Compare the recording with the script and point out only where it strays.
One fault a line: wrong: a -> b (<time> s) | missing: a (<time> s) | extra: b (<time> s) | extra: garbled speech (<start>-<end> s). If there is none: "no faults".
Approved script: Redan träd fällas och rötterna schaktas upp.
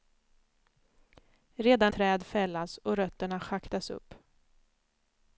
no faults